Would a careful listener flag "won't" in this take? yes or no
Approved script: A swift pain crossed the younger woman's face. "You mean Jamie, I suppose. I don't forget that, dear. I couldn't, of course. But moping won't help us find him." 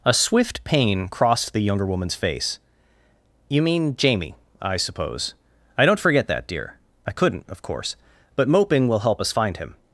yes